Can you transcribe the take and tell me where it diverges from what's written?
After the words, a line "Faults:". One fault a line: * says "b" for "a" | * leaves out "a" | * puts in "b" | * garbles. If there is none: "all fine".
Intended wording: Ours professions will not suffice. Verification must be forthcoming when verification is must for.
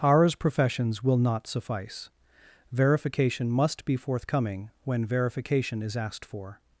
Ours professions will not suffice. Verification must be forthcoming when verification is asked for.
Faults:
* says "asked" for "must"